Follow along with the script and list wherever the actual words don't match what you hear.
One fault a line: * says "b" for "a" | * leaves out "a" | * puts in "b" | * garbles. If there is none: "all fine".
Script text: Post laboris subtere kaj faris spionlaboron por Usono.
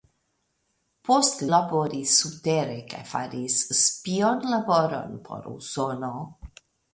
all fine